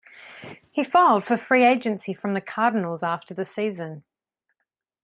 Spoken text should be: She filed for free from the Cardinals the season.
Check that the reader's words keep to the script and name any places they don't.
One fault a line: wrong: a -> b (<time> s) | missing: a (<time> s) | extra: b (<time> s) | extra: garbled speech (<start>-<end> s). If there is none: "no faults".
wrong: She -> He (0.7 s)
extra: agency (1.6 s)
extra: after (3.0 s)